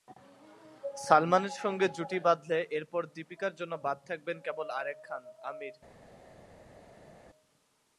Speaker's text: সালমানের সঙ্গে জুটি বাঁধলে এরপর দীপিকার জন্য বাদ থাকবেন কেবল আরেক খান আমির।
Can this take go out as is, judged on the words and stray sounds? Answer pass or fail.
pass